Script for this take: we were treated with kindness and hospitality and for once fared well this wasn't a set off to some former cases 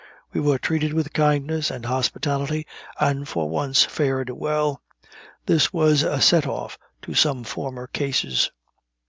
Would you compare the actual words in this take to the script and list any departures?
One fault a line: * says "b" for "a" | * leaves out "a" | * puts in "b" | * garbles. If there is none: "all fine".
* says "was" for "wasn't"